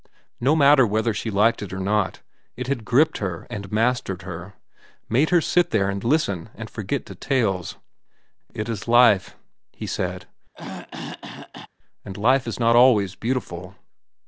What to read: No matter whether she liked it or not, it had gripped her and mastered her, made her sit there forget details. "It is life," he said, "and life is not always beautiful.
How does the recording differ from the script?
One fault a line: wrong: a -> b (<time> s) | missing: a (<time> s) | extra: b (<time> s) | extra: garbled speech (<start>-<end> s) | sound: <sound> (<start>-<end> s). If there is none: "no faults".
extra: and listen and (5.9 s)
sound: throat clearing (10.5-11.7 s)